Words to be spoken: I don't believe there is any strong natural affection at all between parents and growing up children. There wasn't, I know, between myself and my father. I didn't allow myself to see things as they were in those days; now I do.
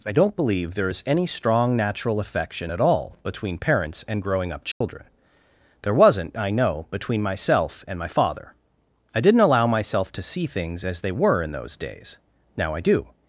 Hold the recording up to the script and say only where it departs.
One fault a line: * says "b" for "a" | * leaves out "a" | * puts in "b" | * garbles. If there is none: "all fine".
all fine